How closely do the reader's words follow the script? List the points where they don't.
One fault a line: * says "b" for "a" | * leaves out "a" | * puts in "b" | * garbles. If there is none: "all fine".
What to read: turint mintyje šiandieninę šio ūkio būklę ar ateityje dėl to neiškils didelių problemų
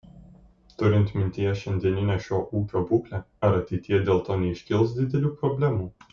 all fine